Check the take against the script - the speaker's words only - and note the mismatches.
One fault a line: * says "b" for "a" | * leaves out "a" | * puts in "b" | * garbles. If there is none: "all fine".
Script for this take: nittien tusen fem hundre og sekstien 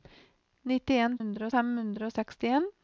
* says "hundre" for "tusen"